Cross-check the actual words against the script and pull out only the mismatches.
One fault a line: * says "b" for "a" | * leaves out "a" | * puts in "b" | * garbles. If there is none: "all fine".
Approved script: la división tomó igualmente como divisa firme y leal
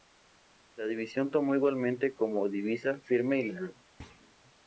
all fine